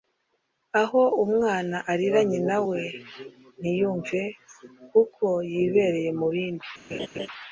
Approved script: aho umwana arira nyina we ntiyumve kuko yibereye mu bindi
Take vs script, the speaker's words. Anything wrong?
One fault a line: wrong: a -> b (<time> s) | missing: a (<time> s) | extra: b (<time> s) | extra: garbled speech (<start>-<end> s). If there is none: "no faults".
no faults